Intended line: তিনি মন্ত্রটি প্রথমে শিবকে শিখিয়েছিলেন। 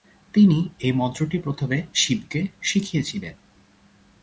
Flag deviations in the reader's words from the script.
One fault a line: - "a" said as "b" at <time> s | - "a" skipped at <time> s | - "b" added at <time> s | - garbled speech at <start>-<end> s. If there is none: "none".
- "এই" added at 0.8 s